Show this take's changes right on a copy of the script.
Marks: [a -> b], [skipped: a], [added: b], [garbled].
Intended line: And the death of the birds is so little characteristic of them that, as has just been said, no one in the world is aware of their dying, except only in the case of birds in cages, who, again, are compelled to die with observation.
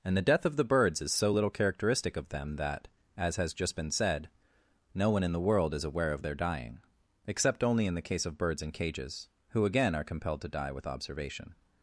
And the death of the birds is so little characteristic of them that, as has just been said, no one in the world is aware of their dying, except only in the case of birds in cages, who, again, are compelled to die with observation.